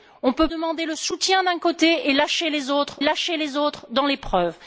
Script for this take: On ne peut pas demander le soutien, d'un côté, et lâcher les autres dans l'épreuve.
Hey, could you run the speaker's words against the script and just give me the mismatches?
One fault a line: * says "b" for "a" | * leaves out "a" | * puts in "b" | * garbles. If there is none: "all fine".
* leaves out "pas"
* puts in "lâcher les autres"